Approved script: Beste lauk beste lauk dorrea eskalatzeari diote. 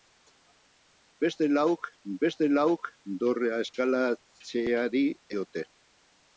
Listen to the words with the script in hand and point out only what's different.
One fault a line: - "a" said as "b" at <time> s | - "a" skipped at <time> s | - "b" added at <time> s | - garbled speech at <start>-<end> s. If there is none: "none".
none